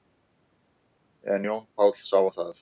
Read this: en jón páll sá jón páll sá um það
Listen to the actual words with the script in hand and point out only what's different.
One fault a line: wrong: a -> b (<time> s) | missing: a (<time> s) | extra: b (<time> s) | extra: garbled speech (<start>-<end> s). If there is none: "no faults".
missing: jón páll sá (2.2 s)